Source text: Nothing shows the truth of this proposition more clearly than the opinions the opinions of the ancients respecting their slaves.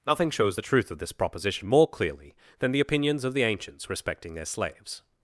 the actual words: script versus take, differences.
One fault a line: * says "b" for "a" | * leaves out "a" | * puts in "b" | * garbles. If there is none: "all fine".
* leaves out "the opinions"